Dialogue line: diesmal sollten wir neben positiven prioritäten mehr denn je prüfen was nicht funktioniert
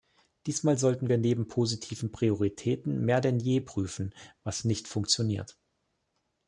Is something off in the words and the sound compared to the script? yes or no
no